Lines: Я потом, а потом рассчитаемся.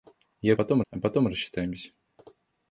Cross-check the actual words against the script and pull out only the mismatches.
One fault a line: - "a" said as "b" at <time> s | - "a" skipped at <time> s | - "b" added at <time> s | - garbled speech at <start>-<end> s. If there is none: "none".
none